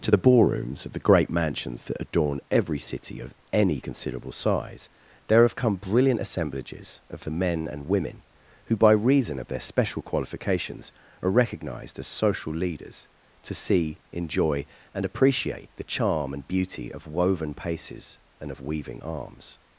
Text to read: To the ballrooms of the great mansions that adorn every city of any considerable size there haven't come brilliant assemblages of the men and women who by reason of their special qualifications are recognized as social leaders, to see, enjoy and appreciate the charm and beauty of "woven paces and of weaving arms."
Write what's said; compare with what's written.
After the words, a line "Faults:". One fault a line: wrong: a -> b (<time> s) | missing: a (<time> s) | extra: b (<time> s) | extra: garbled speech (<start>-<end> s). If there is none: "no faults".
To the ballrooms of the great mansions that adorn every city of any considerable size there have come brilliant assemblages of the men and women who by reason of their special qualifications are recognized as social leaders, to see, enjoy and appreciate the charm and beauty of "woven paces and of weaving arms."
Faults:
wrong: haven't -> have (5.4 s)